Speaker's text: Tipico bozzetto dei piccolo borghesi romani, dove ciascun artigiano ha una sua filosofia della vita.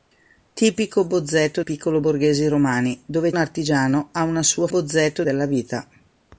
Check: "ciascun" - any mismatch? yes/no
yes